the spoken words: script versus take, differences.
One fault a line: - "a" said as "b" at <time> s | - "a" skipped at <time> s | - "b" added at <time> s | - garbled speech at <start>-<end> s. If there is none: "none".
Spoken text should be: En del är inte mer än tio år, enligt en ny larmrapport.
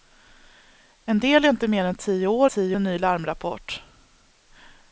- "enligt" said as "tio" at 2.4 s